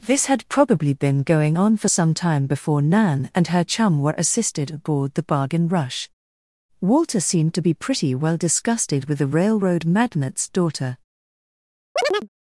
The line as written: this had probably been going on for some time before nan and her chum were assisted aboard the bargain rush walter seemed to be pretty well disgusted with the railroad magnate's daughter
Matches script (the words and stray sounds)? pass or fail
fail